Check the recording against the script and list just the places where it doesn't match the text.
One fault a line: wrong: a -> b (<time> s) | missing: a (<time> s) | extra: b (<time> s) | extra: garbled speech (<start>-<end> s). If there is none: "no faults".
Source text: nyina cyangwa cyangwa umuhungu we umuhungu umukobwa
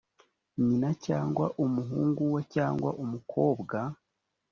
missing: cyangwa (1.5 s)
wrong: umuhungu -> cyangwa (2.5 s)